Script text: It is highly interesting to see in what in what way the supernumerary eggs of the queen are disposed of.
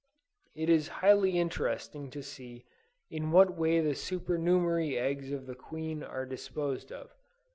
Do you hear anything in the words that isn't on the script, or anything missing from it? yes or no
yes